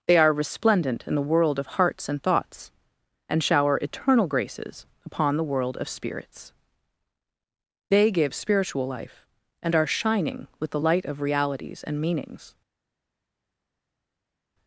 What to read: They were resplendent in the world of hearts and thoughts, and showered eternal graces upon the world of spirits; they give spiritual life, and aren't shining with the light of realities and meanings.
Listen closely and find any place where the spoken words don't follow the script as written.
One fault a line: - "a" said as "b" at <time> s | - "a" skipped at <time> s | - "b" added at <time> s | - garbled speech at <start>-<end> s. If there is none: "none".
- "were" said as "are" at 0.2 s
- "showered" said as "shower" at 3.4 s
- "aren't" said as "are" at 9.8 s